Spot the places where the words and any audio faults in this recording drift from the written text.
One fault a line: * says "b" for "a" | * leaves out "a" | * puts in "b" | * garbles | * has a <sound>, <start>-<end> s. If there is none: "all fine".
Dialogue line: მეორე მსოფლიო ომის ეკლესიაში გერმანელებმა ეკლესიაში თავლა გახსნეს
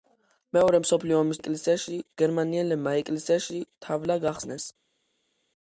all fine